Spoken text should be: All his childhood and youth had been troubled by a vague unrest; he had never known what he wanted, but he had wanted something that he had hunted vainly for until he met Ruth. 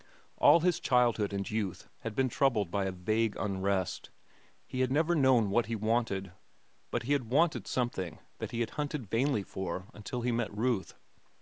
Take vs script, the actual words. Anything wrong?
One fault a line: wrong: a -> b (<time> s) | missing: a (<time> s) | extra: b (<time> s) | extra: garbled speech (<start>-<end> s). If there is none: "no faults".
no faults